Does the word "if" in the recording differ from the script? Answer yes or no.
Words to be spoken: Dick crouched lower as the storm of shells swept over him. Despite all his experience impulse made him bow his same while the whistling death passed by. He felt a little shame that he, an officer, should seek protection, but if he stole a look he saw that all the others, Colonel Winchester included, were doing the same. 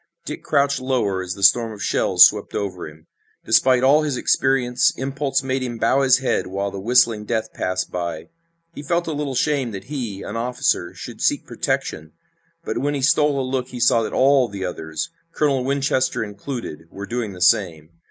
yes